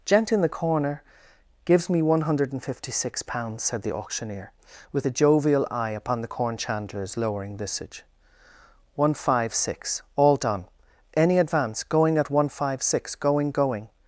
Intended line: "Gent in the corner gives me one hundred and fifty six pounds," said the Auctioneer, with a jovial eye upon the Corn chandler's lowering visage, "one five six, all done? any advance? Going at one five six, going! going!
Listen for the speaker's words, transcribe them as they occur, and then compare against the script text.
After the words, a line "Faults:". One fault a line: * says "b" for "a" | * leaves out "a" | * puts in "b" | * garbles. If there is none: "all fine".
"Gent in the corner gives me one hundred and fifty six pounds," said the Auctioneer, with a jovial eye upon the Corn chandler's lowering visage, "one five six, all done? any advance? Going at one five six, going! going!
Faults:
all fine